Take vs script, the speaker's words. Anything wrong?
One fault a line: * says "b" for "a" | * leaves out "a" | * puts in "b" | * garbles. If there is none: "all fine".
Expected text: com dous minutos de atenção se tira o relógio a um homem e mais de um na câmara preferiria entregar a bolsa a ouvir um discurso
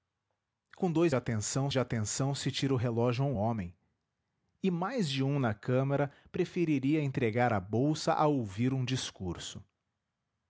* says "atenção" for "minutos"